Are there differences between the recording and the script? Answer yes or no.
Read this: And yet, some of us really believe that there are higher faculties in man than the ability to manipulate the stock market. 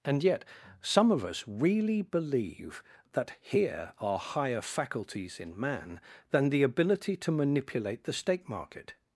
yes